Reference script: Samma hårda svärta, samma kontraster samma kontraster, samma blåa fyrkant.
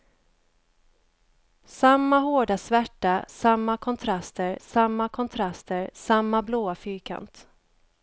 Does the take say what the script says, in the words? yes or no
yes